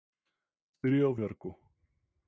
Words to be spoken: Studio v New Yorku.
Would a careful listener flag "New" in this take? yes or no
yes